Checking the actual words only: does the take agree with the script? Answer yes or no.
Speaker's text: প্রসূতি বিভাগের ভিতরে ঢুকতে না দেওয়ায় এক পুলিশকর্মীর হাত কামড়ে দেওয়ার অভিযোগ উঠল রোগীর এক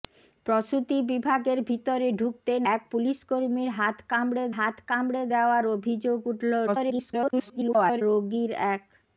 no